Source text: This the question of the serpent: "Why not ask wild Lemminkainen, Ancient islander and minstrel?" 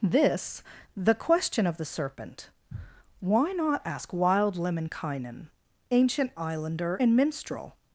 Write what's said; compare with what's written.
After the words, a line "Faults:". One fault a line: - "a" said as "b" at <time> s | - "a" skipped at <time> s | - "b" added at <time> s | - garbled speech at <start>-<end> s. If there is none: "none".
This the question of the serpent: "Why not ask wild Lemminkainen, Ancient islander and minstrel?"
Faults:
none